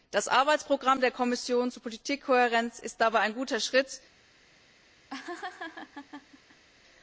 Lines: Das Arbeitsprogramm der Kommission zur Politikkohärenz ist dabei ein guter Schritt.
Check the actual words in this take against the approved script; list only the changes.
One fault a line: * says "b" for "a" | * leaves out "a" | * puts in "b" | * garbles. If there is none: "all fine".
all fine